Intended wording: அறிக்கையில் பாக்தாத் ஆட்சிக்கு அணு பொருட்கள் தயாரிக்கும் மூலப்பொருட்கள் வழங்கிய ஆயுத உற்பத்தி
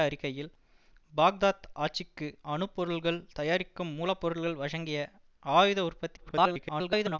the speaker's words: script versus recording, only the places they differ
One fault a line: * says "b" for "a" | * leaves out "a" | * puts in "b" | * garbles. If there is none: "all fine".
* garbles